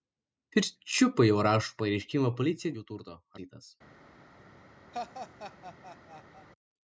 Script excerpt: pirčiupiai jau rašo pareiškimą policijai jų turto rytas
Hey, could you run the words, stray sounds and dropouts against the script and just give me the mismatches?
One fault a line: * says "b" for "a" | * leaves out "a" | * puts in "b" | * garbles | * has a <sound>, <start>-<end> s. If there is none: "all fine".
* has a laugh, 4.9-6.5 s